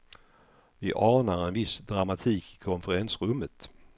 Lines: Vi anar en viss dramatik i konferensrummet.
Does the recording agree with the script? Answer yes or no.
yes